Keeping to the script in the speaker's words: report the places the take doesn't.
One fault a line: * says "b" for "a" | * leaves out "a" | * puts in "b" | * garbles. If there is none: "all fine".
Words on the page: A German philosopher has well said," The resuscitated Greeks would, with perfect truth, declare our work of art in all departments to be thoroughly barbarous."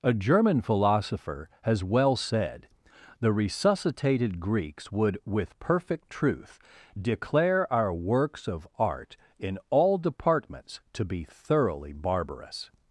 * says "works" for "work"